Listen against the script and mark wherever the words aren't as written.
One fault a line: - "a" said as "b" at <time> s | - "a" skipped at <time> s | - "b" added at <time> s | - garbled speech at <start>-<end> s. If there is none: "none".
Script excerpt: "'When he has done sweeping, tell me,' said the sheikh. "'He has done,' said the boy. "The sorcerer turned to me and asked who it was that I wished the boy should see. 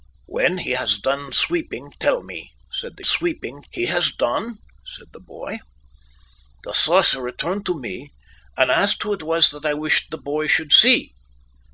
- "sheikh" said as "sweeping" at 3.0 s